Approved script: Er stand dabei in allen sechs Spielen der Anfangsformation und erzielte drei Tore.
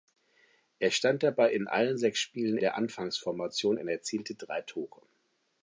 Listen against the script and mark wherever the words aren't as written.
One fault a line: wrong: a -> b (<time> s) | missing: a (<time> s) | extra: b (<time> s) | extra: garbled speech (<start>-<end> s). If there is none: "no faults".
no faults